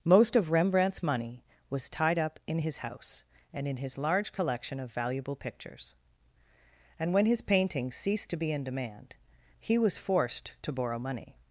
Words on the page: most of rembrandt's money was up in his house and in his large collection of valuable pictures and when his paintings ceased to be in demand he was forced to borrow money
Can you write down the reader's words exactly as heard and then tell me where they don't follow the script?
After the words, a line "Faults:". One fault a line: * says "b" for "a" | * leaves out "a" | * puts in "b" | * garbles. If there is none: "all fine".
most of rembrandt's money was tied up in his house and in his large collection of valuable pictures and when his paintings ceased to be in demand he was forced to borrow money
Faults:
* puts in "tied"